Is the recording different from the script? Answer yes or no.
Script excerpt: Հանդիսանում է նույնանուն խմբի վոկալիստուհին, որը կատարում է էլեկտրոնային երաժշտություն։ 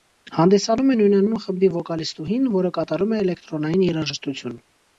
no